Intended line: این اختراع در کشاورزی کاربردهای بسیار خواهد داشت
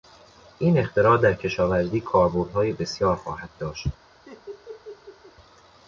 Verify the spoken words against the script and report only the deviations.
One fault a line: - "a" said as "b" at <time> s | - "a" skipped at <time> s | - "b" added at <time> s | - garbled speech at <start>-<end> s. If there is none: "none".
none